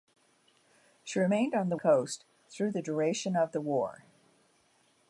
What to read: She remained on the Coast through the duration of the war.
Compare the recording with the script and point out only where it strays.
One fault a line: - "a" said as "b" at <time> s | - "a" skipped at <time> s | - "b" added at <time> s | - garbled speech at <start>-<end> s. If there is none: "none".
none